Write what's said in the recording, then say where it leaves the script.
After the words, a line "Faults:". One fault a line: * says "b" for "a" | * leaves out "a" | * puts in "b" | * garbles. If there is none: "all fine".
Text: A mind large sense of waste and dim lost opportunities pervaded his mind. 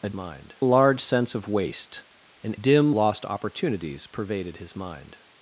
A mind large sense of waste and dim lost opportunities pervaded his mind.
Faults:
all fine